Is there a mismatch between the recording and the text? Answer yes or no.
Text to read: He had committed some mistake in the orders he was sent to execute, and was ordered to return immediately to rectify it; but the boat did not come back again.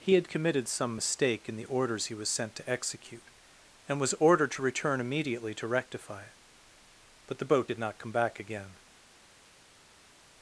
no